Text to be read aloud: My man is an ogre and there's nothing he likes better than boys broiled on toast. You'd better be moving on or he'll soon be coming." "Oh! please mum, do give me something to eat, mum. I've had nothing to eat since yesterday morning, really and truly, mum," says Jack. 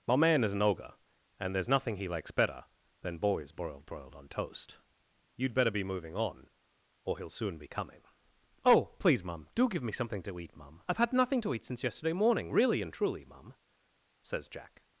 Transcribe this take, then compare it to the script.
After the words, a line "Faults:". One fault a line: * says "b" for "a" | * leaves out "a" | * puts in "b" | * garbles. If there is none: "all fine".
My man is an ogre and there's nothing he likes better than boys broiled broiled on toast. You'd better be moving on or he'll soon be coming." "Oh! please mum, do give me something to eat, mum. I've had nothing to eat since yesterday morning, really and truly, mum," says Jack.
Faults:
* puts in "broiled"